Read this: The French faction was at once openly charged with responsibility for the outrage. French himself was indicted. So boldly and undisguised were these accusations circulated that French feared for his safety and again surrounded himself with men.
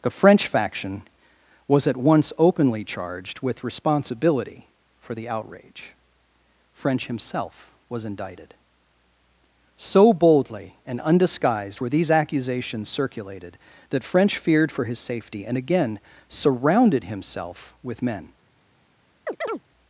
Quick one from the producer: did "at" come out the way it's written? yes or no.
yes